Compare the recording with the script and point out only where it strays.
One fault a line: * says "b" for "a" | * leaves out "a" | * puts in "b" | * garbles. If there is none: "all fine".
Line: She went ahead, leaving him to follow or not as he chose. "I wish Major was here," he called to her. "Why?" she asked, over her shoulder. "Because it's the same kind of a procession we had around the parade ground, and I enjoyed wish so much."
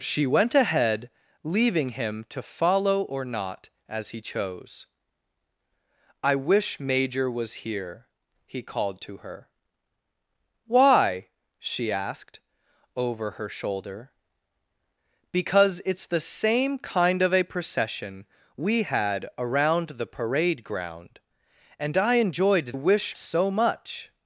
all fine